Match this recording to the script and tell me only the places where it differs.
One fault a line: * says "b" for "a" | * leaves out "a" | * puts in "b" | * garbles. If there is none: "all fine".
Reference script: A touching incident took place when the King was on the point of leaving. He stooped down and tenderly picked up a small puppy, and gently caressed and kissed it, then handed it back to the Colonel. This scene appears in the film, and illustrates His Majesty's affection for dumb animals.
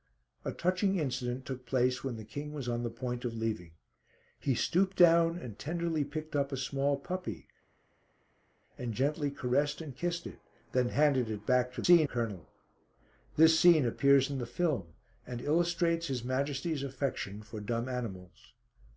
* says "scene" for "the"